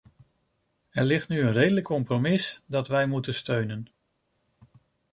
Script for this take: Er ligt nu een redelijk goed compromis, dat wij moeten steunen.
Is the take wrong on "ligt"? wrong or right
right